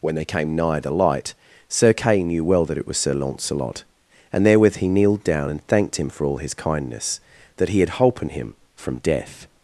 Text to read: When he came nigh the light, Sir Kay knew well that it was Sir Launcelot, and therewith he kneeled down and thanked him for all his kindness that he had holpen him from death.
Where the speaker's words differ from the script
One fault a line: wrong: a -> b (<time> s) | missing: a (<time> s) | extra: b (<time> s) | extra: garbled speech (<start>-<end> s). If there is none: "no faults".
wrong: he -> they (0.1 s)